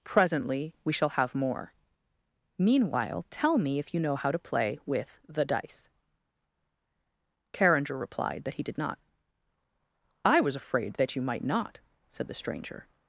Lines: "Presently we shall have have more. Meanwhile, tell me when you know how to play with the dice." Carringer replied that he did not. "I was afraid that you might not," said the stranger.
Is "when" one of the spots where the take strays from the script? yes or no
yes